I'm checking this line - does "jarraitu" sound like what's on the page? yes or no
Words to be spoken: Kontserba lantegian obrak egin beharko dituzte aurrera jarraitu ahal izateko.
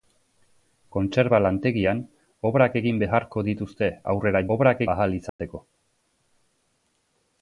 no